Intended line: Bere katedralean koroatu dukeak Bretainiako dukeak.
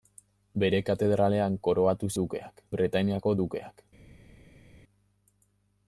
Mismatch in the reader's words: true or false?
false